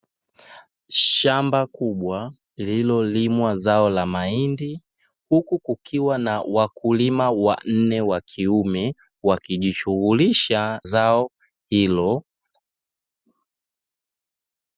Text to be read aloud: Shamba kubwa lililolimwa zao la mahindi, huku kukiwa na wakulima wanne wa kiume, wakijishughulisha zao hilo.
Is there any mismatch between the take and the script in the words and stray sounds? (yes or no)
no